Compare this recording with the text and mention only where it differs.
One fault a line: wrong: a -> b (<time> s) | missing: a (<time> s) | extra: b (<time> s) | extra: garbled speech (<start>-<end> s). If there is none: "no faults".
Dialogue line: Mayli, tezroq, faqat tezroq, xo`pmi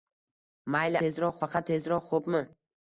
no faults